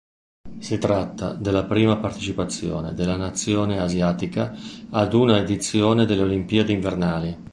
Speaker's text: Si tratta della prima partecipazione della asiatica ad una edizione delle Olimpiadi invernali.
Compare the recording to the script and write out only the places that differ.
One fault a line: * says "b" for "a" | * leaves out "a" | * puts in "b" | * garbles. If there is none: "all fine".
* puts in "nazione"